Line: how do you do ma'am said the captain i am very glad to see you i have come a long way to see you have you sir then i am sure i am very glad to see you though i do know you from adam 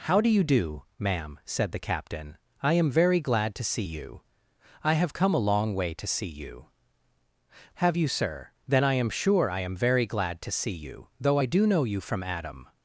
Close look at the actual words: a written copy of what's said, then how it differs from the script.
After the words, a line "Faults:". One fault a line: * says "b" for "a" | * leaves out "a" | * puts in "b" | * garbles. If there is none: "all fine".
how do you do ma'am said the captain i am very glad to see you i have come a long way to see you have you sir then i am sure i am very glad to see you though i do know you from adam
Faults:
all fine